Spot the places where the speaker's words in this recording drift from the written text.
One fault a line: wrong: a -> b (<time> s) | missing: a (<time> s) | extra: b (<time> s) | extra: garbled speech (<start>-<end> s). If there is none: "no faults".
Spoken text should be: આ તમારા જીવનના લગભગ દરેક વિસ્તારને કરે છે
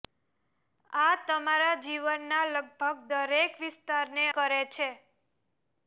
no faults